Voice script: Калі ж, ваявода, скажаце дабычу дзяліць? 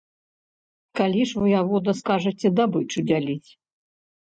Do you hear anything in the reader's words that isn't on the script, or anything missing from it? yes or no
no